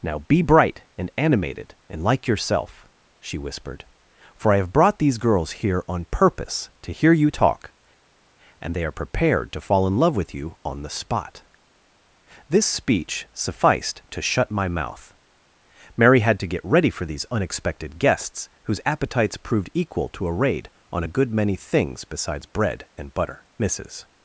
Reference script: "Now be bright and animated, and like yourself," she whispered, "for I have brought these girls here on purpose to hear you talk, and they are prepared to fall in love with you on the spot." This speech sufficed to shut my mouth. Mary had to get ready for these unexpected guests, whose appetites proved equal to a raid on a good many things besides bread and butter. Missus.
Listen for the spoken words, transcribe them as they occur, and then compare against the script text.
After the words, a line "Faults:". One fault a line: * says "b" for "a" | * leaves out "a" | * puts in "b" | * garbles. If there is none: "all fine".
"Now be bright and animated, and like yourself," she whispered, "for I have brought these girls here on purpose to hear you talk, and they are prepared to fall in love with you on the spot." This speech sufficed to shut my mouth. Mary had to get ready for these unexpected guests, whose appetites proved equal to a raid on a good many things besides bread and butter. Missus.
Faults:
all fine